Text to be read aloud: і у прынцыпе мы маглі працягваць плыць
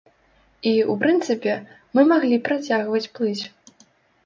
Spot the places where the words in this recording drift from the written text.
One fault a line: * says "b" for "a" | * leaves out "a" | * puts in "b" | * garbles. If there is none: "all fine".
all fine